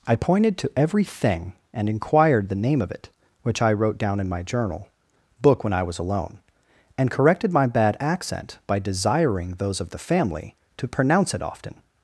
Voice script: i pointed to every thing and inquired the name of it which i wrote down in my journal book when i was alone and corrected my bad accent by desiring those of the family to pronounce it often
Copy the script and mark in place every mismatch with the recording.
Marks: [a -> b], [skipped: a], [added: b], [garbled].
i pointed to every thing and inquired the name of it which i wrote down in my journal book when i was alone and corrected my bad accent by desiring those of the family to pronounce it often